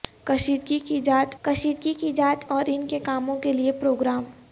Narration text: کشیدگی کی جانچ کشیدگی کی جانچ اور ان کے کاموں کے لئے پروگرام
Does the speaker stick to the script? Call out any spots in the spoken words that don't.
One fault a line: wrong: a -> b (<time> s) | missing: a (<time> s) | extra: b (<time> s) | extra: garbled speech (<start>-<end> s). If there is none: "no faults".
no faults